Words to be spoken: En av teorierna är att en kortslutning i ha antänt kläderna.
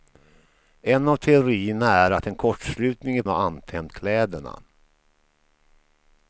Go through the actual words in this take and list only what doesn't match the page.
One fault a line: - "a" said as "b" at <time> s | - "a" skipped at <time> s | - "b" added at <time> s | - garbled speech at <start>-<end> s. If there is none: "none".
none